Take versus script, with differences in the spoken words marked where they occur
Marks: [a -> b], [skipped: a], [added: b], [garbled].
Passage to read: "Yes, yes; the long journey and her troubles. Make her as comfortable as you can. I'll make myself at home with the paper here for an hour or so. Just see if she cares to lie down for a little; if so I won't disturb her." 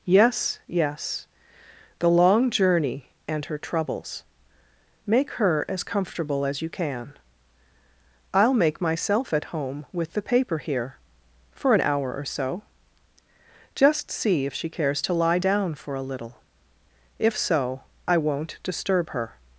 "Yes, yes; the long journey and her troubles. Make her as comfortable as you can. I'll make myself at home with the paper here for an hour or so. Just see if she cares to lie down for a little; if so I won't disturb her."